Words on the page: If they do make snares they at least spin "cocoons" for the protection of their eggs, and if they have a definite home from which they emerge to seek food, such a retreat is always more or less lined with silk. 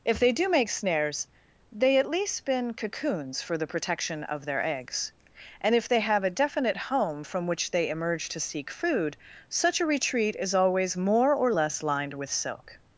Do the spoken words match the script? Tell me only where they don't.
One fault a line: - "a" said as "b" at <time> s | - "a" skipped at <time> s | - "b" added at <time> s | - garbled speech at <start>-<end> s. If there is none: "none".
none